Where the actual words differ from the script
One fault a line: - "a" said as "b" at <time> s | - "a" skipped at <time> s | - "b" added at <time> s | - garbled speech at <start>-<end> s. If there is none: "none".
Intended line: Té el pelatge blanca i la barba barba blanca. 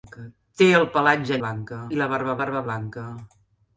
none